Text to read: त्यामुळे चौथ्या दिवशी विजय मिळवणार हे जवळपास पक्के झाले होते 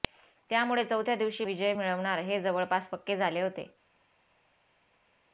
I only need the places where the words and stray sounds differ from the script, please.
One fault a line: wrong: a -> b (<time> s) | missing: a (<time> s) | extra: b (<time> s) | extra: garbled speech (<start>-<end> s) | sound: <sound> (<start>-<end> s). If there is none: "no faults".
no faults